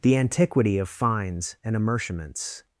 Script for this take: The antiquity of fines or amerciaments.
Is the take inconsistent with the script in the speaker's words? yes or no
yes